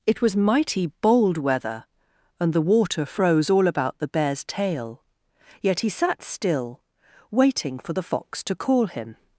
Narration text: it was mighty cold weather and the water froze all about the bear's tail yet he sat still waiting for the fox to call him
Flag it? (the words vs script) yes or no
yes